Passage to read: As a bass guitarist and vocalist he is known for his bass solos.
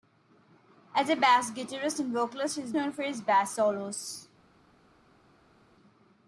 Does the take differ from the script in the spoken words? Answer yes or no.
no